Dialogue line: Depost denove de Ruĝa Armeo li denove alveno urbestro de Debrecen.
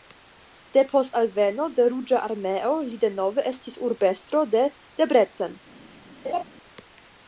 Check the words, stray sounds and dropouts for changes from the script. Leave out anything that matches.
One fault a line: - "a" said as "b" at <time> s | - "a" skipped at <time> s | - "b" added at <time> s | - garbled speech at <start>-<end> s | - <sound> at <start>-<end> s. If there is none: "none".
- "denove" said as "alveno" at 1.2 s
- "alveno" said as "estis" at 3.5 s
- laugh at 6.2-6.4 s